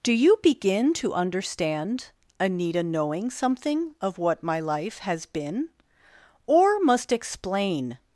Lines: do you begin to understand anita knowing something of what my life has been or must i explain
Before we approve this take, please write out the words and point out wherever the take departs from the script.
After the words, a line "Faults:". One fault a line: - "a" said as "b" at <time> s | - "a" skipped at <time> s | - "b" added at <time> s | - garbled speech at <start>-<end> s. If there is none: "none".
do you begin to understand anita knowing something of what my life has been or must explain
Faults:
- "i" skipped at 7.1 s